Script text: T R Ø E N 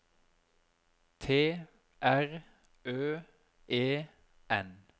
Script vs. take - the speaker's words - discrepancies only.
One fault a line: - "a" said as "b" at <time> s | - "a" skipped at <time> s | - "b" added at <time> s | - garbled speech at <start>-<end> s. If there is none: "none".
none